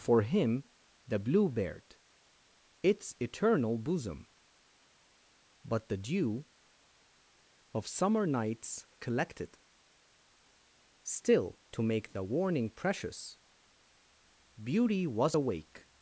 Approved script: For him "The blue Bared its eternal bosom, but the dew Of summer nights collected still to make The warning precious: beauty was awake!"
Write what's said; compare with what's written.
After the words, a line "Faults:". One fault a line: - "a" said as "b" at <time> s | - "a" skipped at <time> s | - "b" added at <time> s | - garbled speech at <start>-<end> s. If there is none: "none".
For him "The blue Bared its eternal bosom, but the dew Of summer nights collected still to make The warning precious: beauty was awake!"
Faults:
none